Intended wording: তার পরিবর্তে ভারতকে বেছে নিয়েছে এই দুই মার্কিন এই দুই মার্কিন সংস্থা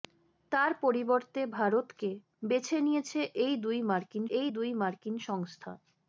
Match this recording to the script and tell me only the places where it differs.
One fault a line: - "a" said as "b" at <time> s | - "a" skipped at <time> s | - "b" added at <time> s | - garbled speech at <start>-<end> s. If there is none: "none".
none